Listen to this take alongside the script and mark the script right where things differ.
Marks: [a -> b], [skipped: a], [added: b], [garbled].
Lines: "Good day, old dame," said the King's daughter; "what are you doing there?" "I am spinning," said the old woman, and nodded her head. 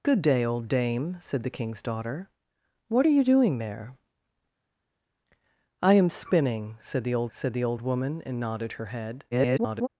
"Good day, old dame," said the King's daughter; "what are you doing there?" "I am spinning," said the old [added: said the old] woman, and nodded her head. [garbled]